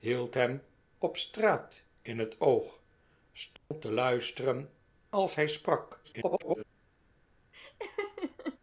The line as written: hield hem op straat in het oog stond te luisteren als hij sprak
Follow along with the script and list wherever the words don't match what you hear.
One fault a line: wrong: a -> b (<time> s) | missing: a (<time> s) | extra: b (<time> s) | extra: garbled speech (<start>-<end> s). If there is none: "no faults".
extra: garbled speech (6.0-6.6 s)